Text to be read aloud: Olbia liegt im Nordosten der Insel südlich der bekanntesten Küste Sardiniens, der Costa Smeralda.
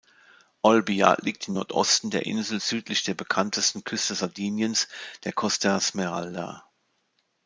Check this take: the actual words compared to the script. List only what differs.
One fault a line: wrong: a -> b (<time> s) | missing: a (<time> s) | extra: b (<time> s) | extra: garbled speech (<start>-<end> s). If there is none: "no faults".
no faults